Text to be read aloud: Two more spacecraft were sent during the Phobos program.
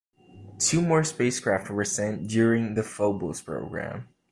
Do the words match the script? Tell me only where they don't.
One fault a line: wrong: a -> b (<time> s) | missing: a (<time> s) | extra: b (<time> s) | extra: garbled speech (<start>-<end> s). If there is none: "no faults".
no faults